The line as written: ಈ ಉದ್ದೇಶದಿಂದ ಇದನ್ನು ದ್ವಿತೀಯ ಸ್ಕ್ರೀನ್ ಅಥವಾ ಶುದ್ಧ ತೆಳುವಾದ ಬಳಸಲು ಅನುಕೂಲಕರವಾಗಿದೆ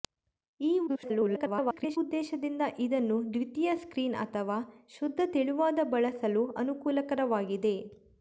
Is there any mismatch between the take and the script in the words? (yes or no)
yes